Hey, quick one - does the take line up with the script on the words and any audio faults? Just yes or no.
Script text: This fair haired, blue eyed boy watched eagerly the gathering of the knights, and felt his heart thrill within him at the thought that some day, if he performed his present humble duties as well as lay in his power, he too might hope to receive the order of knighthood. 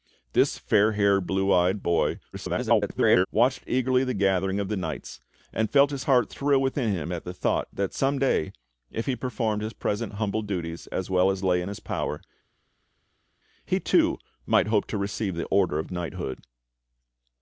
no